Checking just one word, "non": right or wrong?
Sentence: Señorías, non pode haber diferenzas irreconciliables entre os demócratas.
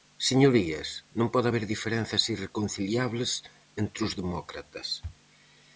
right